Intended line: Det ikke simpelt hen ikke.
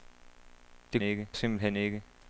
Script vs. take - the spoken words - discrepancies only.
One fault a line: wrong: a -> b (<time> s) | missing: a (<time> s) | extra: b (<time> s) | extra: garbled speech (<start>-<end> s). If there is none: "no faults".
no faults